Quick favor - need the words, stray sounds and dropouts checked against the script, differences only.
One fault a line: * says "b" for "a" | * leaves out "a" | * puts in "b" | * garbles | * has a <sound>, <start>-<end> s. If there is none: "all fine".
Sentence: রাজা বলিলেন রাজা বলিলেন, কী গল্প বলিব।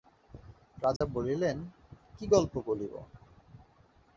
* has a dropout, 1.0-1.0 s
* leaves out "রাজা বলিলেন"